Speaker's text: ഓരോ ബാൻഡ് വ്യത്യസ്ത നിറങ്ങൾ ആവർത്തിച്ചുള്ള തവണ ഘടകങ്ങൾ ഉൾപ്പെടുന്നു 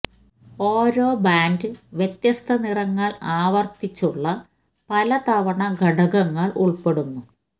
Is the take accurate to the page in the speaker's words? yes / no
no